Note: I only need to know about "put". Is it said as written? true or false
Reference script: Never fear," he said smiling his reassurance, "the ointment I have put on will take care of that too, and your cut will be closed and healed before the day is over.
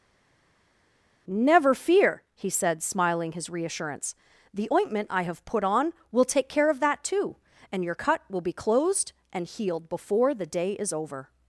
true